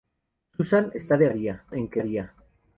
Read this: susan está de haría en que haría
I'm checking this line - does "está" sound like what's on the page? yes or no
yes